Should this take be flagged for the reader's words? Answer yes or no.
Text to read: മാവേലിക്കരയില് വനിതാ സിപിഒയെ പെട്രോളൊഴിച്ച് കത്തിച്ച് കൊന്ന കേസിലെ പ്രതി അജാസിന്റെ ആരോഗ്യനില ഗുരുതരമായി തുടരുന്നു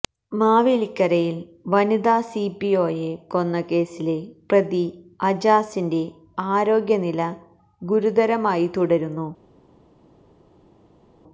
yes